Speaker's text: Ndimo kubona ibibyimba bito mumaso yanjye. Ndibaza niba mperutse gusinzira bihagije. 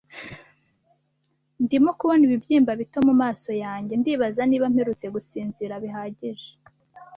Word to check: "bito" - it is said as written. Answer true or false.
true